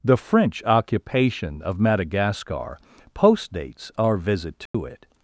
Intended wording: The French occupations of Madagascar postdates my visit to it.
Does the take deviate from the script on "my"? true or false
true